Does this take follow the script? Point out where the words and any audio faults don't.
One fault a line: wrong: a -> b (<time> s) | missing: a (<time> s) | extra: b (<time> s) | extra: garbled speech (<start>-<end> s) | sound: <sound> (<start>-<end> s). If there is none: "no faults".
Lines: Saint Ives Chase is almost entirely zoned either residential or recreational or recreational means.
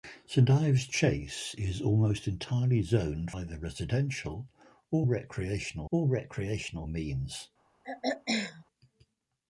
sound: throat clearing (7.8-8.6 s)